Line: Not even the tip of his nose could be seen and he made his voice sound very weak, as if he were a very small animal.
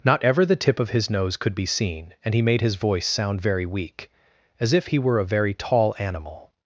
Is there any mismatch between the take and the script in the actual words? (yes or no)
yes